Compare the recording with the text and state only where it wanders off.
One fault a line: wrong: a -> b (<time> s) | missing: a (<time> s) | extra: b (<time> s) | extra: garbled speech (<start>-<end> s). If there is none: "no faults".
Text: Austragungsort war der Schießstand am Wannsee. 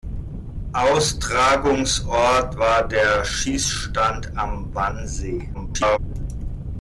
extra: garbled speech (5.5-6.0 s)